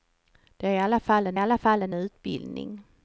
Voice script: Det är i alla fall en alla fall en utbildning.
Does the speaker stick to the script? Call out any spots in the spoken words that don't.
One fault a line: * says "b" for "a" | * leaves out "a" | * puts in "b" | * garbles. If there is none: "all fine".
all fine